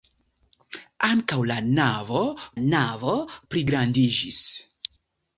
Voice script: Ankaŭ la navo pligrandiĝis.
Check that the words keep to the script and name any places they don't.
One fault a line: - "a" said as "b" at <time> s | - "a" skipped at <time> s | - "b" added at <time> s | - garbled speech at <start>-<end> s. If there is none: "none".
- "navo" added at 2.6 s